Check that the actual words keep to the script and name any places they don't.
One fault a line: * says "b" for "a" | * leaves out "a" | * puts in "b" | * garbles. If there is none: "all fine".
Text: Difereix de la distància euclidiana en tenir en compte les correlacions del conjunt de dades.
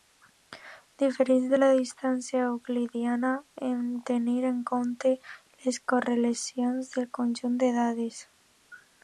all fine